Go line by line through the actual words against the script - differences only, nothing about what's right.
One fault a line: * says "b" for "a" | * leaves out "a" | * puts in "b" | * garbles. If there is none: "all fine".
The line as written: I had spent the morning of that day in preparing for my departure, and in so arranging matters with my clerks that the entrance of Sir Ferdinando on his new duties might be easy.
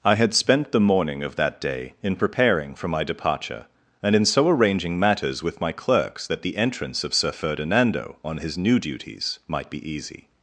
all fine